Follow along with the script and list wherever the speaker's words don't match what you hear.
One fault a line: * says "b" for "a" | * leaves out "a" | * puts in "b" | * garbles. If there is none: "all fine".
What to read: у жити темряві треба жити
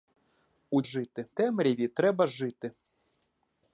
all fine